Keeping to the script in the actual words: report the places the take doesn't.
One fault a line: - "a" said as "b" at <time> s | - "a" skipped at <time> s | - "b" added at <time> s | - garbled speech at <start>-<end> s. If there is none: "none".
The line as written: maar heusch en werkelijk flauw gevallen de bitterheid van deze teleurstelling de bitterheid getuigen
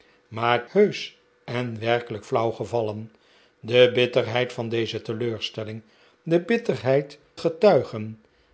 none